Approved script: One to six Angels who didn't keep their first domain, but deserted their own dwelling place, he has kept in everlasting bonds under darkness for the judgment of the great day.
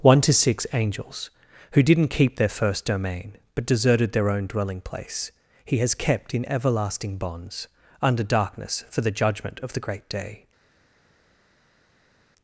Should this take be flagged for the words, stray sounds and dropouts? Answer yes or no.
no